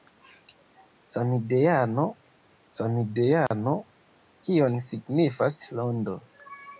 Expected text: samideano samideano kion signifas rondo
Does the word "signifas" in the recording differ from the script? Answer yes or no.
no